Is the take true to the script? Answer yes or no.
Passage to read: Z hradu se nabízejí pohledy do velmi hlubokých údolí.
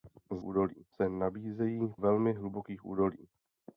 no